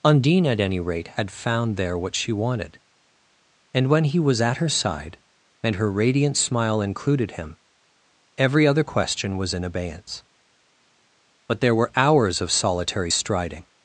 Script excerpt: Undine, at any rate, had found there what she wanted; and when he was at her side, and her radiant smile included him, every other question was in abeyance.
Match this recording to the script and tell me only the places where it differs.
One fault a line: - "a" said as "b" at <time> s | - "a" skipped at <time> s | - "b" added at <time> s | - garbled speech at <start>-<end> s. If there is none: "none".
- "But there were hours of solitary striding" added at 11.5 s